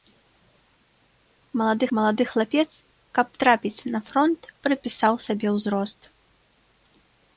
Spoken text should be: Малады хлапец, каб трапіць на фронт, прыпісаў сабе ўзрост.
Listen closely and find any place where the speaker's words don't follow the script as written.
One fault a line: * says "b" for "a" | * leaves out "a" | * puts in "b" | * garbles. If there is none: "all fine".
* puts in "малады"